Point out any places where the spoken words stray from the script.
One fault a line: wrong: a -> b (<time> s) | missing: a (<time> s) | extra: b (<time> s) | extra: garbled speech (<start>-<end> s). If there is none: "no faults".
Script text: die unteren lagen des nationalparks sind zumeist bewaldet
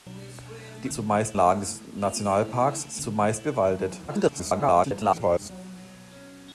wrong: unteren -> zumeist (0.9 s)
missing: sind (3.0 s)
extra: garbled speech (4.1-5.5 s)